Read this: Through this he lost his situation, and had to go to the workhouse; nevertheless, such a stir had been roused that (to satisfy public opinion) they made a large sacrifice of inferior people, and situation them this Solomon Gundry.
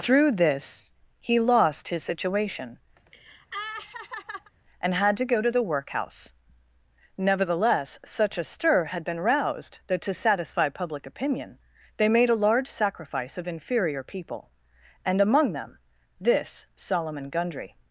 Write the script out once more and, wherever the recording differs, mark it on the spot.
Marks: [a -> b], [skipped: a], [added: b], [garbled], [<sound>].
Through this he lost his situation, [laugh] and had to go to the workhouse; nevertheless, such a stir had been roused that (to satisfy public opinion) they made a large sacrifice of inferior people, and [situation -> among] them this Solomon Gundry.